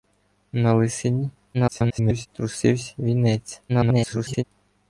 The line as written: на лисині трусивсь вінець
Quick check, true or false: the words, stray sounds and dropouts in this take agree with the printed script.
false